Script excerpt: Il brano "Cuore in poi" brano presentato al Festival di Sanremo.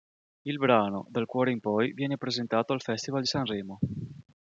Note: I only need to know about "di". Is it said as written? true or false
true